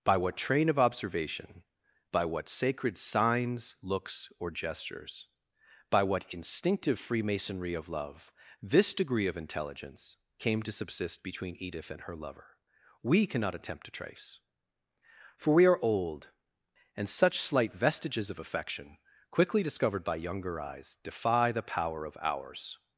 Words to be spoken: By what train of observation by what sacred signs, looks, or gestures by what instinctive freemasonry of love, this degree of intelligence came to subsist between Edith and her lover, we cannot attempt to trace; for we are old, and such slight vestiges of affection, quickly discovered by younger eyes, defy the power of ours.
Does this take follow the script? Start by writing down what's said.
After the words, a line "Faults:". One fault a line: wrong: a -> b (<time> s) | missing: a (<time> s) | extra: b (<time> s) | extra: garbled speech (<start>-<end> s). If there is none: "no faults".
By what train of observation by what sacred signs, looks, or gestures by what instinctive freemasonry of love, this degree of intelligence came to subsist between Edith and her lover, we cannot attempt to trace; for we are old, and such slight vestiges of affection, quickly discovered by younger eyes, defy the power of ours.
Faults:
no faults